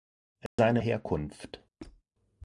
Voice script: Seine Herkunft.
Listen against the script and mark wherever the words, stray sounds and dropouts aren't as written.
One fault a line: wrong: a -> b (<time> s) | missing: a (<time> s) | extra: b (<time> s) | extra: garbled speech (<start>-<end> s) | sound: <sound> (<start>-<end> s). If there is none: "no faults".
sound: dropout (0.5-0.6 s)
sound: squeak (1.8-2.0 s)